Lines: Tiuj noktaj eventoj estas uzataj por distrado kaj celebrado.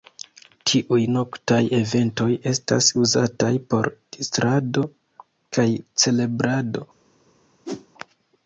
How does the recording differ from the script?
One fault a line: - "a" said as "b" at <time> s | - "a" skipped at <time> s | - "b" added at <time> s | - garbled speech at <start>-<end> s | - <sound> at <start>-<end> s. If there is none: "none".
- whoosh at 7.7-7.9 s